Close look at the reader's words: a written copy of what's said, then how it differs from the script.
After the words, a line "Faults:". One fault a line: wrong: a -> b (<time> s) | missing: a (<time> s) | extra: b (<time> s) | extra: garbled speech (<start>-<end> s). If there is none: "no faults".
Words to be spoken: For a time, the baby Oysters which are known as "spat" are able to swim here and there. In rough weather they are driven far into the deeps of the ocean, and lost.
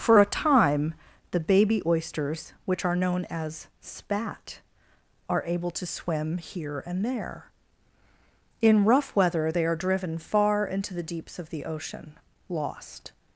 For a time, the baby Oysters which are known as "spat" are able to swim here and there. In rough weather they are driven far into the deeps of the ocean, lost.
Faults:
missing: and (12.2 s)